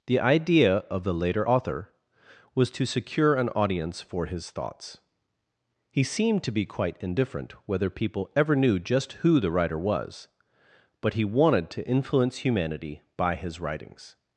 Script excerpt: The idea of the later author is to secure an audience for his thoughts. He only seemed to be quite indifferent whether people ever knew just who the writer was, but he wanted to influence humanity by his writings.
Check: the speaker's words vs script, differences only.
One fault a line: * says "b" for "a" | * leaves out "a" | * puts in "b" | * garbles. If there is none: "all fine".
* says "was" for "is"
* leaves out "only"